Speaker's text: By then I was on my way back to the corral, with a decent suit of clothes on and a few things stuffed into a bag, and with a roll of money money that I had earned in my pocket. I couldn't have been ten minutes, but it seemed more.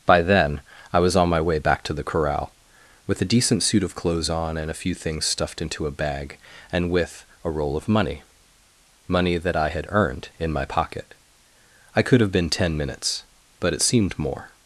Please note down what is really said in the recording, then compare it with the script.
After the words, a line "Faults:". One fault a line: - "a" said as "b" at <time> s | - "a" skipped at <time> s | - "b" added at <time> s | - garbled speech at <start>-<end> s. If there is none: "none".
By then I was on my way back to the corral, with a decent suit of clothes on and a few things stuffed into a bag, and with a roll of money money that I had earned in my pocket. I could have been ten minutes, but it seemed more.
Faults:
- "couldn't" said as "could" at 12.0 s